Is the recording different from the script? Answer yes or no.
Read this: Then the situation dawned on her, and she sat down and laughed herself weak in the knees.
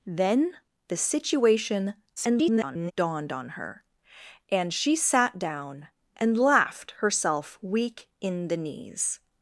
yes